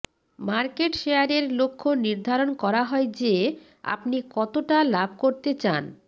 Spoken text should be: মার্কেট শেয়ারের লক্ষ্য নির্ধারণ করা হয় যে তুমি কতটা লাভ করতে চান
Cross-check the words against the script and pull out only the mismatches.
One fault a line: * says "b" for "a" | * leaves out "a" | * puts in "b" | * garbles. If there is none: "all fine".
* says "আপনি" for "তুমি"